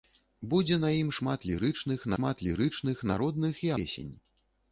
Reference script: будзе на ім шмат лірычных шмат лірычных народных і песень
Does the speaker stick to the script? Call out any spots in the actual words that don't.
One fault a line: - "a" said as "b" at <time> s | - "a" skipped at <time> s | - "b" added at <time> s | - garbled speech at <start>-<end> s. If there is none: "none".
none